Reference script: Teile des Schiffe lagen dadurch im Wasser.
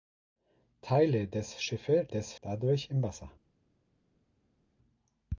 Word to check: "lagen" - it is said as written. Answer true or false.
false